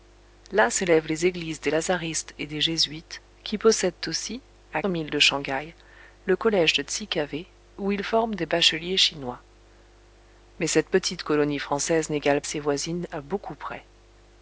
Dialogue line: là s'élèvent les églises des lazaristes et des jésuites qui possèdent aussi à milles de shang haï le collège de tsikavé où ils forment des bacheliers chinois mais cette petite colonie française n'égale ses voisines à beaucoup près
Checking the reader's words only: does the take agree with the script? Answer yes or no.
yes